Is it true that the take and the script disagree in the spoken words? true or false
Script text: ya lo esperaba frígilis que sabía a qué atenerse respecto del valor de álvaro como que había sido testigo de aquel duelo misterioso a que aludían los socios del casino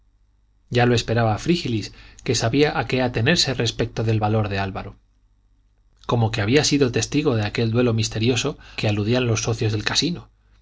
true